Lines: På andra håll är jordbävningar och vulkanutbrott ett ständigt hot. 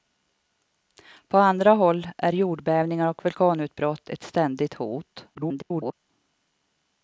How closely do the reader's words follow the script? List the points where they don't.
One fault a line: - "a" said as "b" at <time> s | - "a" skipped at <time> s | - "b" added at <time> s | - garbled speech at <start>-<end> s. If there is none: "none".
- garbled speech at 5.3-5.9 s